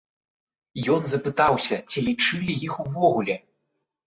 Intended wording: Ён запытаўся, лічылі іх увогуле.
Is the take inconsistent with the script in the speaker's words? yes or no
yes